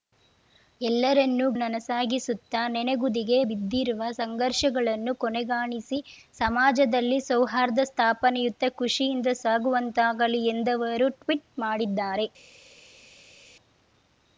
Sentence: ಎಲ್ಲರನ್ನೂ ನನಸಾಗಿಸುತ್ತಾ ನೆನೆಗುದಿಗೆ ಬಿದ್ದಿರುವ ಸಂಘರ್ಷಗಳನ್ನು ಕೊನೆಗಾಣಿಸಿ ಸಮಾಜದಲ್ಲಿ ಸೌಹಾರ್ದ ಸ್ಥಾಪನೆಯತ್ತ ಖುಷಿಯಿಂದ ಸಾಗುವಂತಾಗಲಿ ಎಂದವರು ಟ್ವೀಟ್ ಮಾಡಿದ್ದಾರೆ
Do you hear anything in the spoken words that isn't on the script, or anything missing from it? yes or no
no